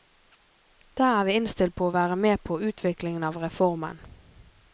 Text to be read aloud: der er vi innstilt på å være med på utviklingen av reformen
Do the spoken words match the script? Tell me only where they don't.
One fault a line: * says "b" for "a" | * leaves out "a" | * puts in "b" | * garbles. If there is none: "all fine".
all fine